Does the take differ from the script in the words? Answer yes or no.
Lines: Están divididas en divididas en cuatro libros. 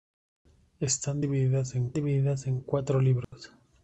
no